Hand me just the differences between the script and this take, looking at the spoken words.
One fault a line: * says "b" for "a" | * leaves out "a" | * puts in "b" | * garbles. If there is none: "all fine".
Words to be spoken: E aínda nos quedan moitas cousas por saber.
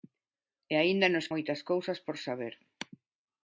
* leaves out "quedan"